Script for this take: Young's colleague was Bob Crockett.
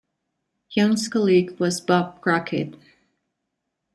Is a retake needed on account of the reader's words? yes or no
no